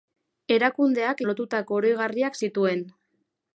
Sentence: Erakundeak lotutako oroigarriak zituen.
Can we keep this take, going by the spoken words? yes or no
yes